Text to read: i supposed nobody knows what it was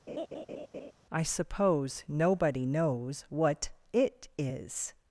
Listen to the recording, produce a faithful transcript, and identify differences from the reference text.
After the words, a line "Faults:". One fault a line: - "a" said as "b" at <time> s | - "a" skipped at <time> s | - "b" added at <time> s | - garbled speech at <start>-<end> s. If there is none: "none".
i suppose nobody knows what it is
Faults:
- "supposed" said as "suppose" at 1.2 s
- "was" said as "is" at 4.4 s